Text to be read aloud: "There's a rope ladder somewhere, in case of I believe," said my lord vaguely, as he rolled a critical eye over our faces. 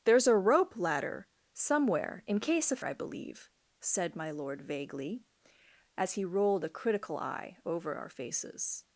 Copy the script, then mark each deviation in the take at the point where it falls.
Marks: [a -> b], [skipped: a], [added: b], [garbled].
"There's a rope ladder somewhere, in case of I believe," said my lord vaguely, as he rolled a critical eye over our faces.